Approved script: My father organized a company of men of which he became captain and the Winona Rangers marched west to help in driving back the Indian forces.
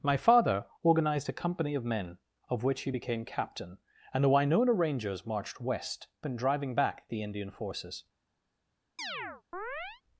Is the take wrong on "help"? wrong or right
wrong